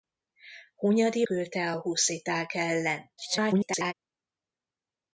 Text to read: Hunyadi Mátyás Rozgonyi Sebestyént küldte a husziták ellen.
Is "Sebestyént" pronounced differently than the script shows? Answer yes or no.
yes